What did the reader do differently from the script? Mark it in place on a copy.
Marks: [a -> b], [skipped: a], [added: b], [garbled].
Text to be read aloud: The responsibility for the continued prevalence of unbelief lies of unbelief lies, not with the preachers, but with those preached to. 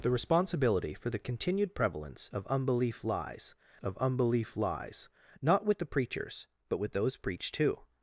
The responsibility for the continued prevalence of unbelief lies of unbelief lies, not with the preachers, but with those preached to.